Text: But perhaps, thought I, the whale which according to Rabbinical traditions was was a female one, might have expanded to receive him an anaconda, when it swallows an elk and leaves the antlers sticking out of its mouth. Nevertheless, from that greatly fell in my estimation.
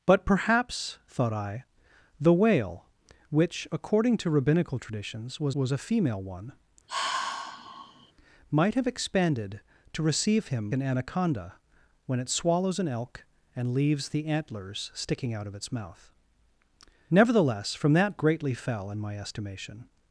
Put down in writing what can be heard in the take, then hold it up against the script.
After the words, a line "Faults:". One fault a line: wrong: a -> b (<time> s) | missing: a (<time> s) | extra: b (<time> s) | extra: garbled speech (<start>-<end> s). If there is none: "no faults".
But perhaps, thought I, the whale which according to Rabbinical traditions was was a female one, might have expanded to receive him an anaconda, when it swallows an elk and leaves the antlers sticking out of its mouth. Nevertheless, from that greatly fell in my estimation.
Faults:
no faults